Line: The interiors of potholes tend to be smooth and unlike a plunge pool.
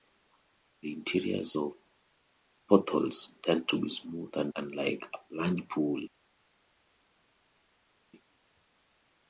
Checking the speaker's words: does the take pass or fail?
pass